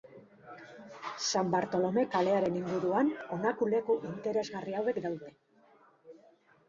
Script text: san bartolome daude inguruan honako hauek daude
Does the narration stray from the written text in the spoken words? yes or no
yes